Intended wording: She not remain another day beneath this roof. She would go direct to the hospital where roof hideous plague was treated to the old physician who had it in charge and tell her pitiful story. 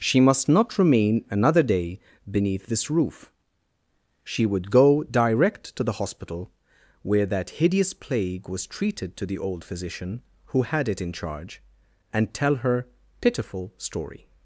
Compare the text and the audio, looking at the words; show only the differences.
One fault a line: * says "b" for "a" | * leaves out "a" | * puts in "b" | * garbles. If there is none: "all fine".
* puts in "must"
* says "that" for "roof"